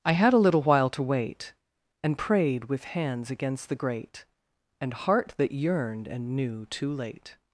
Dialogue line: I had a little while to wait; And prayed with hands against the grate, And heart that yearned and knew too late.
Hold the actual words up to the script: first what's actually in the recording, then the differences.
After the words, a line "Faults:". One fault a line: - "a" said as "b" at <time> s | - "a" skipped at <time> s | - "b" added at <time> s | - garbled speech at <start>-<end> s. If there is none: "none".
I had a little while to wait; And prayed with hands against the grate, And heart that yearned and knew too late.
Faults:
none